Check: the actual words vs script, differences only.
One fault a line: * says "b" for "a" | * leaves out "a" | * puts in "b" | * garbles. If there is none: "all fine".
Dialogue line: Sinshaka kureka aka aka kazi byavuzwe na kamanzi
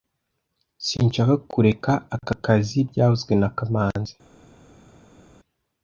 * leaves out "aka"